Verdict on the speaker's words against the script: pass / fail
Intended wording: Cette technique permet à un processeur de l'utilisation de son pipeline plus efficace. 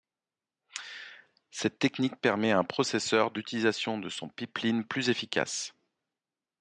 pass